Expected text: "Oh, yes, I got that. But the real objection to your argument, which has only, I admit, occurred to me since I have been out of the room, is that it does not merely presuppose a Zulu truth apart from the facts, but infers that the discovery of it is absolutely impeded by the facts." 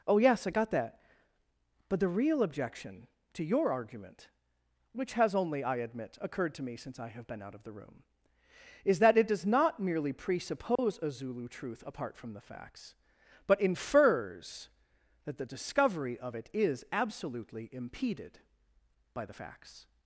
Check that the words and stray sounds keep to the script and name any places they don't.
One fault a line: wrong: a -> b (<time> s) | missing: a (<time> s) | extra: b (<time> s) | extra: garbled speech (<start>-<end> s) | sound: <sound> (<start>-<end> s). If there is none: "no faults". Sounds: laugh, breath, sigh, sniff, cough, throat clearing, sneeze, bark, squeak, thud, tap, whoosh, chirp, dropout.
sound: dropout (10.8-10.8 s)